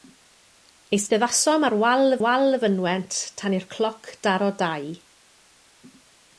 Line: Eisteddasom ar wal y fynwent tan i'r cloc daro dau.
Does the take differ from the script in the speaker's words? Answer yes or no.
yes